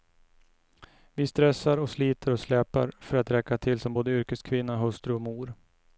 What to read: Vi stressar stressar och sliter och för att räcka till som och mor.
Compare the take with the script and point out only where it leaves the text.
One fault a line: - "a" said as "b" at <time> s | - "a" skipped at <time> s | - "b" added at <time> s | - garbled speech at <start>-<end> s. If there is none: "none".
- "stressar" skipped at 1.8 s
- "släpar" added at 2.4 s
- "både yrkeskvinna hustru" added at 3.9 s